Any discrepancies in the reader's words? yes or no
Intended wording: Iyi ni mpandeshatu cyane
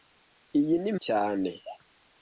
yes